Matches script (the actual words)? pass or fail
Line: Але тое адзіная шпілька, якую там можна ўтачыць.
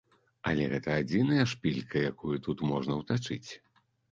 fail